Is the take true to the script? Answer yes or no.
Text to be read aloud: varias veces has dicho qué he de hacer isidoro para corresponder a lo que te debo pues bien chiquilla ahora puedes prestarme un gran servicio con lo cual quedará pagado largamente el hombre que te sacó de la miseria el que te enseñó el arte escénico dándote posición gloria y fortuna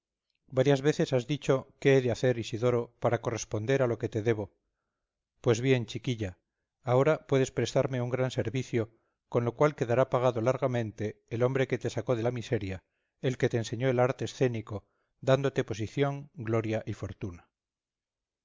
yes